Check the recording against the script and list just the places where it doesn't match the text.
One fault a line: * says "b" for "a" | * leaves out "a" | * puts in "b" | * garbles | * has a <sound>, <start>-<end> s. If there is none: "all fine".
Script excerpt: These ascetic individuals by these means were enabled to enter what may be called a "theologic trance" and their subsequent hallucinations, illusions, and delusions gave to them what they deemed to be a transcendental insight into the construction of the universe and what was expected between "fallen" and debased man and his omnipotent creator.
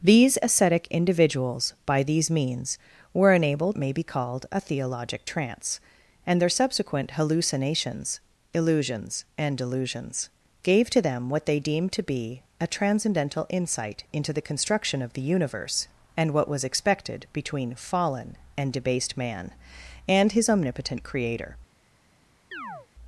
* leaves out "to enter what"
* has a chirp, 22.5-22.9 s